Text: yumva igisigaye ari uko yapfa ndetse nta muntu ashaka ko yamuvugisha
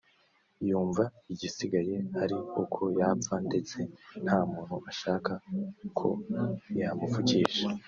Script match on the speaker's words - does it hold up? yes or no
yes